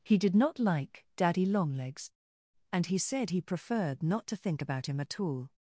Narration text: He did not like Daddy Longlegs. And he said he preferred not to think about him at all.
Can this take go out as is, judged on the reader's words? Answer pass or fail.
pass